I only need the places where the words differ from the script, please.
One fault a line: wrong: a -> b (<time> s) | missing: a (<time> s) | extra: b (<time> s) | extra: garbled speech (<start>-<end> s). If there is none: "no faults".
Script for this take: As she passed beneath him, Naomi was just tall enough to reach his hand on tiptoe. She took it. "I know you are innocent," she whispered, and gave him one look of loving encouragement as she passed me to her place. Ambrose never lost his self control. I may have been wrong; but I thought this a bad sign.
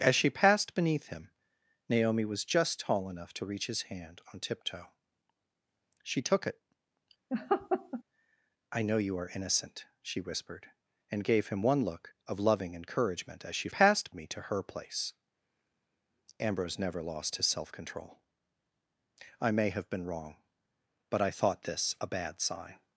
no faults